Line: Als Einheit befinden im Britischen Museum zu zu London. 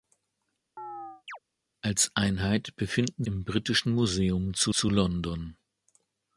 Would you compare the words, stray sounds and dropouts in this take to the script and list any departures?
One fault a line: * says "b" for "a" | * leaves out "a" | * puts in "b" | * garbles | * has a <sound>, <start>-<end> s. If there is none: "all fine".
* has a chirp, 0.8-1.4 s